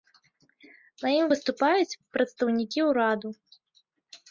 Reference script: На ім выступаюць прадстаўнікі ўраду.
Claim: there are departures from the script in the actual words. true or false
false